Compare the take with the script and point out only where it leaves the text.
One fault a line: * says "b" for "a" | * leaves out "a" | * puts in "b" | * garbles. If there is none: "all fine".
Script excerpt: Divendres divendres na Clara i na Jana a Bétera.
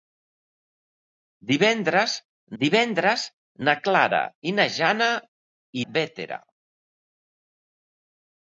all fine